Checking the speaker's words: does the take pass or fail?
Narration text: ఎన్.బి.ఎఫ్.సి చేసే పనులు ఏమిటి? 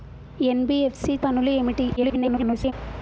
fail